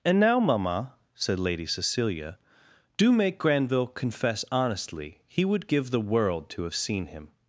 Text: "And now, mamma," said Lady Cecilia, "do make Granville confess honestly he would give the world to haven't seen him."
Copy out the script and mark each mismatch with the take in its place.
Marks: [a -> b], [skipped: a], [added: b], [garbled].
"And now, mamma," said Lady Cecilia, "do make Granville confess honestly he would give the world to [haven't -> have] seen him."